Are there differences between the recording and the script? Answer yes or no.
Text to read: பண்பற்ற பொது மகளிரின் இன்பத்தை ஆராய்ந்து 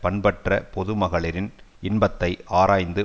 no